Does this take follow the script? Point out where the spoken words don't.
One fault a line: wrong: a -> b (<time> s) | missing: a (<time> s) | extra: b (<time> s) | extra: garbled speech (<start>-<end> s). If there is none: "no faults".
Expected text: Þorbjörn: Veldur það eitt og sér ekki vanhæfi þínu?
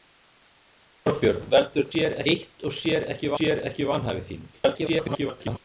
wrong: það -> sér (1.9 s)
extra: sér ekki (3.4 s)
extra: garbled speech (4.5-5.6 s)